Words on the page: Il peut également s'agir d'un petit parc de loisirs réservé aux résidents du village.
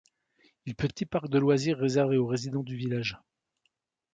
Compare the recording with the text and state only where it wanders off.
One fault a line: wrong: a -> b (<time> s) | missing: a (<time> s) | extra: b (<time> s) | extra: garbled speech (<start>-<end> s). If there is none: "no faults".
missing: également s'agir d'un (0.9 s)